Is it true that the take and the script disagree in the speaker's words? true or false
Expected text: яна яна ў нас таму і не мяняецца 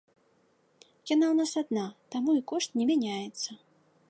true